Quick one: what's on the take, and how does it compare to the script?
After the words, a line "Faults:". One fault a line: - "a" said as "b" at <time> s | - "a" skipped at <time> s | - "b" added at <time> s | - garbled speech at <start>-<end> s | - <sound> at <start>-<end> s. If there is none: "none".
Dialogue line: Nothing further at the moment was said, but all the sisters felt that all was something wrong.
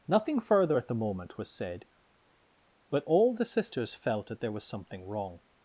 Nothing further at the moment was said, but all the sisters felt that there was something wrong.
Faults:
- "all" said as "there" at 4.4 s